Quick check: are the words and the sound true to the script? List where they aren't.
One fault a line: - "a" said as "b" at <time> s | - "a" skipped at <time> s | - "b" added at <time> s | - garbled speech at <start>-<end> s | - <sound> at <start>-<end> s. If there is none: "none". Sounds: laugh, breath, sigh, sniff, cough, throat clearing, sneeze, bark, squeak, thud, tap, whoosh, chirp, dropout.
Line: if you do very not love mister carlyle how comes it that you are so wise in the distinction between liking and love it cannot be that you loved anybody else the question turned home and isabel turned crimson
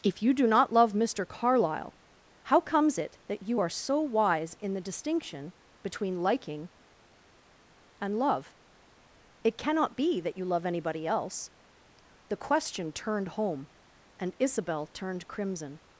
- "very" skipped at 0.5 s
- "loved" said as "love" at 10.4 s